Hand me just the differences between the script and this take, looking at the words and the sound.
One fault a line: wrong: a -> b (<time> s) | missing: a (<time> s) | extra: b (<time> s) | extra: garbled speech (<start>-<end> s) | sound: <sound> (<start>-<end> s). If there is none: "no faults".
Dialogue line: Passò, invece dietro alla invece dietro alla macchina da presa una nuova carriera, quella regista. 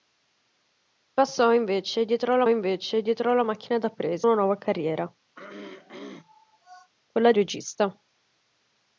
sound: throat clearing (5.3-6.9 s)